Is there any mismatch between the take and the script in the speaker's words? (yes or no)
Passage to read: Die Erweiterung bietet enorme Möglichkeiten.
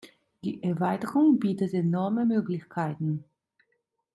no